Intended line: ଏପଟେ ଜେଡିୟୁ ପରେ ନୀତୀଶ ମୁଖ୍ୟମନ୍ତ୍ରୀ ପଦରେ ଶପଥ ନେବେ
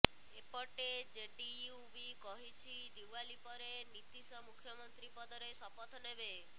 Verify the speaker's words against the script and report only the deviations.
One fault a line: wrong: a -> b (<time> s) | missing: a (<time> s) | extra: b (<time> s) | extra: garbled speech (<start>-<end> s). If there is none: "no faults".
extra: ବି କହିଛି ଦିୱାଲୀ (1.9 s)